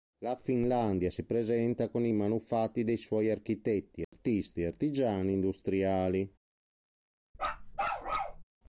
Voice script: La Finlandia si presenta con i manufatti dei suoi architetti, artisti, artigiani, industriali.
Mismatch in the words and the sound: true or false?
true